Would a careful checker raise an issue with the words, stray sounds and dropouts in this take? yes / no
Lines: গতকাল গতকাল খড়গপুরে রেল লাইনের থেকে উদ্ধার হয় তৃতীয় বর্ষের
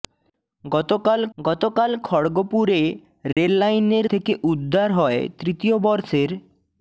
yes